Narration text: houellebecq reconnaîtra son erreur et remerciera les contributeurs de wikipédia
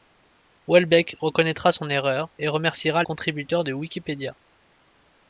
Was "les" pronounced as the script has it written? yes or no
no